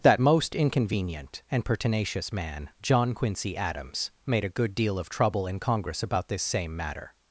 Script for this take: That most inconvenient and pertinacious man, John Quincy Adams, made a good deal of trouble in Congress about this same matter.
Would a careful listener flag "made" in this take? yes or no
no